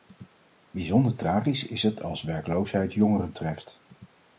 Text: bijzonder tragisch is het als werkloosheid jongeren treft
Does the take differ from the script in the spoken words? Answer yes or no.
no